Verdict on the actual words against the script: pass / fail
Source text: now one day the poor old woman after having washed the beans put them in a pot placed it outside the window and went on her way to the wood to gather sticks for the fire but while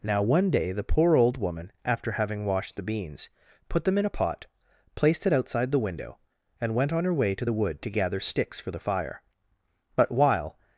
pass